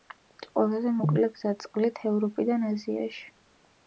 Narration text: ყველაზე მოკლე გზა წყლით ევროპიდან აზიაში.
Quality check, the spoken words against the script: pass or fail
pass